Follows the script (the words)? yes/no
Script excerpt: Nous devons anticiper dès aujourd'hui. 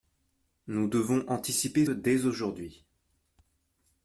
yes